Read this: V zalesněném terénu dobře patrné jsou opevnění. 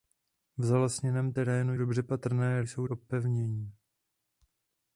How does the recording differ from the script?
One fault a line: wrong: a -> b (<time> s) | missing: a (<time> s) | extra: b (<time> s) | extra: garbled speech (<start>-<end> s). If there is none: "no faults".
no faults